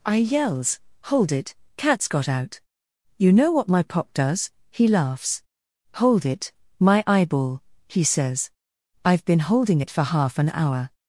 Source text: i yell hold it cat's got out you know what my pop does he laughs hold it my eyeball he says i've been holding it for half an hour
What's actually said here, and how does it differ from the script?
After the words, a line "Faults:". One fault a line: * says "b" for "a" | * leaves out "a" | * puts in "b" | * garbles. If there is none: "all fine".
i yells hold it cat's got out you know what my pop does he laughs hold it my eyeball he says i've been holding it for half an hour
Faults:
* says "yells" for "yell"